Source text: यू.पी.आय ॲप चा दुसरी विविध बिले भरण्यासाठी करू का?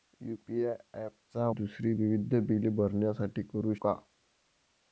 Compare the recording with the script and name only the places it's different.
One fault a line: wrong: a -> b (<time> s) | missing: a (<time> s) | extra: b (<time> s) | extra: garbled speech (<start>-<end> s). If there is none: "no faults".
no faults